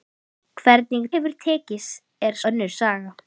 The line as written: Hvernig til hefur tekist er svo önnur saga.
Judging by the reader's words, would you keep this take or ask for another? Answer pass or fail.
fail